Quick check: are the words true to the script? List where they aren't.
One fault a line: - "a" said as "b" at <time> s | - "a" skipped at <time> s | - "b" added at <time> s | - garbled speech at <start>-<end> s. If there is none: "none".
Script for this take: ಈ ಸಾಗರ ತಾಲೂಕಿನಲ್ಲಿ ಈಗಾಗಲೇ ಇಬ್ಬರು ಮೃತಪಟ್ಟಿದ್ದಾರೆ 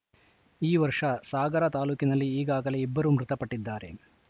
- "ವರ್ಷ" added at 0.8 s